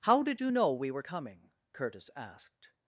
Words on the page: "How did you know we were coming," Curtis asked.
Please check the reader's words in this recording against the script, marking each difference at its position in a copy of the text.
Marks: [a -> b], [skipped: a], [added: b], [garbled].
"How did you know we were coming," Curtis asked.